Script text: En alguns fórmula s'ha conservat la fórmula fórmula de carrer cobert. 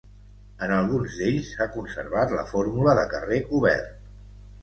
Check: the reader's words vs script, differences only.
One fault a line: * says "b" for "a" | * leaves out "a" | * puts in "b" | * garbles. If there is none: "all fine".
* says "d'ells" for "fórmula"
* leaves out "fórmula"